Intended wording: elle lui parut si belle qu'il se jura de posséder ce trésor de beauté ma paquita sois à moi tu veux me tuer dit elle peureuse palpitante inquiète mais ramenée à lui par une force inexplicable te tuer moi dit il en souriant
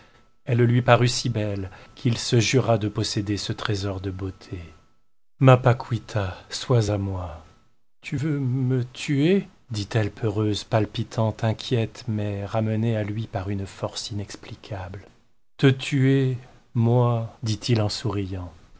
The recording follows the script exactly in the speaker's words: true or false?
true